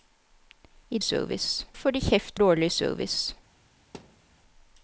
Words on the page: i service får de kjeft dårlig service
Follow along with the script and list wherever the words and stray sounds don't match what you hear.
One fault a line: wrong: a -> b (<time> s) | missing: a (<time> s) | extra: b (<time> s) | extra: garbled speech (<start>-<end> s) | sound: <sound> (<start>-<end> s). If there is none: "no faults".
sound: thud (3.9-4.3 s)